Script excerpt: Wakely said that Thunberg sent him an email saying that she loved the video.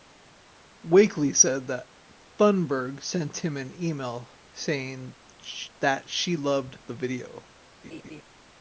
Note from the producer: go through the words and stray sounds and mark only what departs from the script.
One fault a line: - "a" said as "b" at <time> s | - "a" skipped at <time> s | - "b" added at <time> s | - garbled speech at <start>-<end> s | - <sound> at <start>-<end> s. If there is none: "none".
- laugh at 7.8-8.2 s